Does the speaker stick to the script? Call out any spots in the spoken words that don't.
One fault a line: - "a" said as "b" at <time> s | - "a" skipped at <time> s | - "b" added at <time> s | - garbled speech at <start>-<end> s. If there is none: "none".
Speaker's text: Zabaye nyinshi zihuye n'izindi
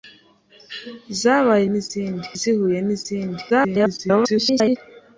- "nyinshi" said as "n'izindi" at 1.7 s
- garbled speech at 3.5-4.8 s